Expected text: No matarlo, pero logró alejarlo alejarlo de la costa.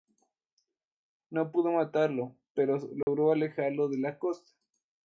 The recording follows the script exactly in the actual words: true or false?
false